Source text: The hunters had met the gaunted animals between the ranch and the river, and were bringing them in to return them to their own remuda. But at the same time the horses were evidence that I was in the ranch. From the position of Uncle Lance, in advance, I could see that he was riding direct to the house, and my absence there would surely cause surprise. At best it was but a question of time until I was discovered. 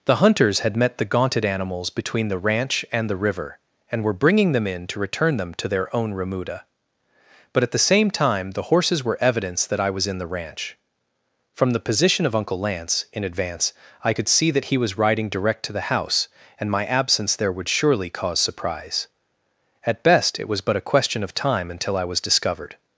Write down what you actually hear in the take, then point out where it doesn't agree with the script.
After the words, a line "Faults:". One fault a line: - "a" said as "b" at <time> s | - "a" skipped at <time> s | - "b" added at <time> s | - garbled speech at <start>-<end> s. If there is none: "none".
The hunters had met the gaunted animals between the ranch and the river, and were bringing them in to return them to their own remuda. But at the same time the horses were evidence that I was in the ranch. From the position of Uncle Lance, in advance, I could see that he was riding direct to the house, and my absence there would surely cause surprise. At best it was but a question of time until I was discovered.
Faults:
none